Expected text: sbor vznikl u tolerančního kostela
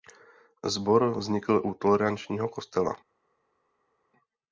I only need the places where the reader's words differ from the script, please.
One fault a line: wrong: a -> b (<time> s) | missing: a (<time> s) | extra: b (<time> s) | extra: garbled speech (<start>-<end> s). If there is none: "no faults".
no faults